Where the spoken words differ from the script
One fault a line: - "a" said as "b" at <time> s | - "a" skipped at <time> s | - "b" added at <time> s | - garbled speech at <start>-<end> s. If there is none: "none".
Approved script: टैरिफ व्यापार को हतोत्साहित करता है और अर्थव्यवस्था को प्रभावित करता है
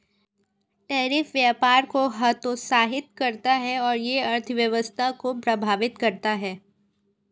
- "यह" added at 4.0 s